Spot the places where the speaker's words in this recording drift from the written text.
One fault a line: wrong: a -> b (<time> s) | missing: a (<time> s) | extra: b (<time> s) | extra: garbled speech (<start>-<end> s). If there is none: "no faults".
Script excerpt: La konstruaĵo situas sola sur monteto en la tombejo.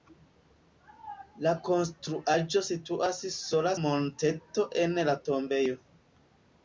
missing: sur (3.8 s)